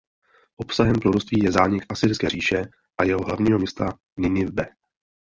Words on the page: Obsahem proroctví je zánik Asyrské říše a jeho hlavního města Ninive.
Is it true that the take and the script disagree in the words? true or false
false